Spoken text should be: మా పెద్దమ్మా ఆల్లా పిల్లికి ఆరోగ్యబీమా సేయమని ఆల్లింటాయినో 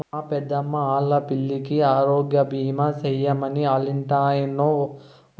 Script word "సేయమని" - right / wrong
right